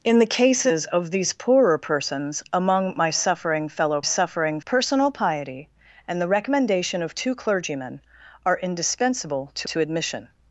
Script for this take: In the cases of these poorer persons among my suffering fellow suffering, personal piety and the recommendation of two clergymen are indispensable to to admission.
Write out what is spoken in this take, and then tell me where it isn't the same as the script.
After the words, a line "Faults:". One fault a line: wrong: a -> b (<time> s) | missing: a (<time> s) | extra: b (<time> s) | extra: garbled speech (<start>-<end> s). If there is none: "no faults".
In the cases of these poorer persons among my suffering fellow suffering, personal piety and the recommendation of two clergymen are indispensable to to admission.
Faults:
no faults